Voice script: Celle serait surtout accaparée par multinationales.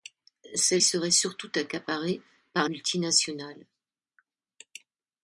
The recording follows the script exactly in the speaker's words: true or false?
true